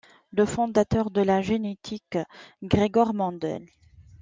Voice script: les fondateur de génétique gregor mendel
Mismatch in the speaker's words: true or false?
true